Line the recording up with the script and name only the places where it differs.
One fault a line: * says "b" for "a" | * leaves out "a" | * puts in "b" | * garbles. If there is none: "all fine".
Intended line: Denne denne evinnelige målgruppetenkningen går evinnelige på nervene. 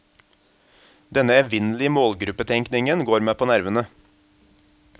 * leaves out "denne"
* says "meg" for "evinnelige"